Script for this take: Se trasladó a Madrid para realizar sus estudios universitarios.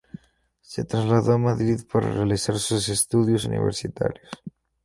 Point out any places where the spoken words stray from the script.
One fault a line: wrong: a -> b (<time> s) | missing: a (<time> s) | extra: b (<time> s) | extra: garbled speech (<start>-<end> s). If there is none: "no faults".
no faults